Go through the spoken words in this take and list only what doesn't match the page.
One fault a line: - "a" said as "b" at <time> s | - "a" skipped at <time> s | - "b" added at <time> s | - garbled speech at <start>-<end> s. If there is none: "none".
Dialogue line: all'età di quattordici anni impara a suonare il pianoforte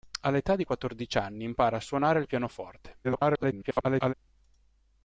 - garbled speech at 3.0-4.1 s